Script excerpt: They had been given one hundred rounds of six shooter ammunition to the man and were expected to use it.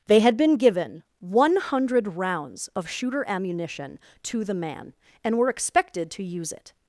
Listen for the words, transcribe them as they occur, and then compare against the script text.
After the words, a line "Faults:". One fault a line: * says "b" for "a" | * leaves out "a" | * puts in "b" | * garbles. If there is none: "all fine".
They had been given one hundred rounds of shooter ammunition to the man and were expected to use it.
Faults:
* leaves out "six"